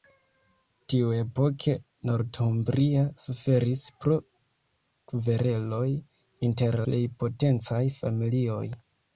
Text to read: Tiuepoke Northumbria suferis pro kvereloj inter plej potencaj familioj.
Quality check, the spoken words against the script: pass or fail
pass